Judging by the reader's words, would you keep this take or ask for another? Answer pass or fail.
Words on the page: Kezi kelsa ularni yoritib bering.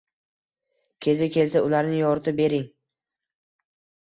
pass